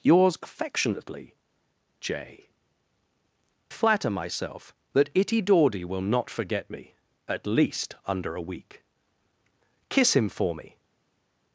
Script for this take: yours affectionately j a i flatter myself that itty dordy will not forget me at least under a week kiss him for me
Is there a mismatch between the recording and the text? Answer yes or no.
yes